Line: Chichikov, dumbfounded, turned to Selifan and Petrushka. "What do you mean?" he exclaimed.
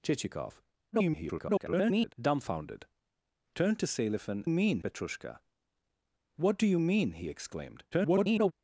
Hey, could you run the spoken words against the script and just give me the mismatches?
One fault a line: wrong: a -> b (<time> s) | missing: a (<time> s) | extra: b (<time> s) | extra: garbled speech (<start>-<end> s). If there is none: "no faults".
extra: garbled speech (0.9-2.1 s)
wrong: and -> mean (4.5 s)
extra: garbled speech (7.9-8.5 s)